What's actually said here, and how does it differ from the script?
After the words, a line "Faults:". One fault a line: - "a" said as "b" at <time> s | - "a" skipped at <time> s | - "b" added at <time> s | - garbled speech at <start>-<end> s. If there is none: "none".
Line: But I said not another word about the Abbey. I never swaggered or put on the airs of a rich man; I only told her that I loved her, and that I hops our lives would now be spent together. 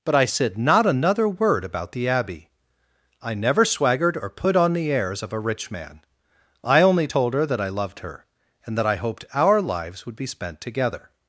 But I said not another word about the Abbey. I never swaggered or put on the airs of a rich man; I only told her that I loved her, and that I hoped our lives would be spent together.
Faults:
- "hops" said as "hoped" at 9.0 s
- "now" skipped at 10.2 s